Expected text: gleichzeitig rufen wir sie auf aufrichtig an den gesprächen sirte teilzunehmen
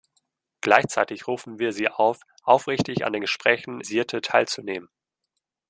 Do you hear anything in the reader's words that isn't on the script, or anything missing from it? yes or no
no